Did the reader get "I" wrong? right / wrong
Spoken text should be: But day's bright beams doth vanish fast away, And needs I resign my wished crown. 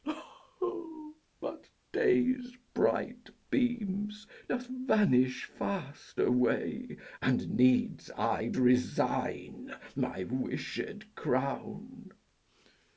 right